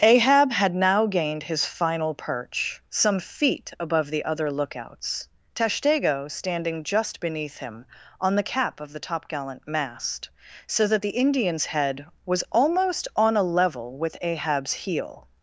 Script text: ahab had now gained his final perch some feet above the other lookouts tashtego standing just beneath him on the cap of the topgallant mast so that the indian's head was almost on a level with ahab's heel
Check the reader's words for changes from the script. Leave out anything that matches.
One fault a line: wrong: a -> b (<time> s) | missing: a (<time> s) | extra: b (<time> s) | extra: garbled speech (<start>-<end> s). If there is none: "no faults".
no faults